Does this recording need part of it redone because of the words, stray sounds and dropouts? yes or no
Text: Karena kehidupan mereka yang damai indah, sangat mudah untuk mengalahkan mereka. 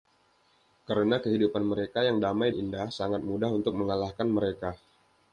no